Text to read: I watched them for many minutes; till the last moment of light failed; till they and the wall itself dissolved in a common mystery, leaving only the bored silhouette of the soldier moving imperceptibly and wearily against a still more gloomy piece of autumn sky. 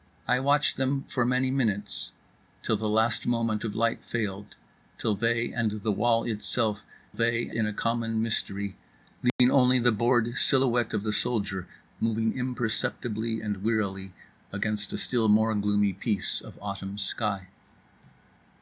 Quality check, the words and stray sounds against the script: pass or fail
fail